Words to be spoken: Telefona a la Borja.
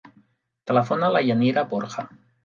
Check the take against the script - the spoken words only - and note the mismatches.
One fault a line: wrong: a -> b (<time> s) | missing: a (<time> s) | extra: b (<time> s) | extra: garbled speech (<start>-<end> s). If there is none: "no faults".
extra: Yanira (1.2 s)